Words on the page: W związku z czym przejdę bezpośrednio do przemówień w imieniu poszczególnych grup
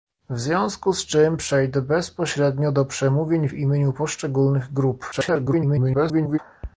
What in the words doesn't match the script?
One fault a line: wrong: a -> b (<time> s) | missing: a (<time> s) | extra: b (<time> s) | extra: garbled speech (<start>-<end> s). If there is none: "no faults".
extra: garbled speech (5.1-6.4 s)